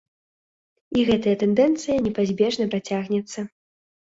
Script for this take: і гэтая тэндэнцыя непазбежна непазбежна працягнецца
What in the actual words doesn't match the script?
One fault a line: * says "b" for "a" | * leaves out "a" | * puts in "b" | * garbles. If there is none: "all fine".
* leaves out "непазбежна"